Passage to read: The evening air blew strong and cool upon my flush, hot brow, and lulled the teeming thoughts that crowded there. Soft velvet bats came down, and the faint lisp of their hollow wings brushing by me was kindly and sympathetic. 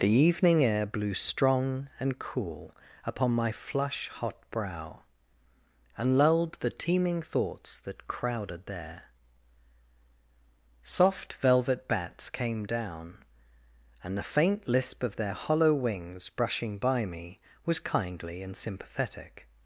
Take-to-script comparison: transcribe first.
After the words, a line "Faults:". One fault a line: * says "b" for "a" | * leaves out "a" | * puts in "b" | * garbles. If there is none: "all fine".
The evening air blew strong and cool upon my flush, hot brow, and lulled the teeming thoughts that crowded there. Soft velvet bats came down, and the faint lisp of their hollow wings brushing by me was kindly and sympathetic.
Faults:
all fine